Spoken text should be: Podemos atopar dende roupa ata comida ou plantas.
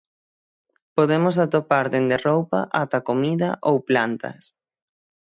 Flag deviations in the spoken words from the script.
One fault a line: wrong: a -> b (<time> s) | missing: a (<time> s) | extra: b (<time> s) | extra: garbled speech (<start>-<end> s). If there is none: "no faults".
no faults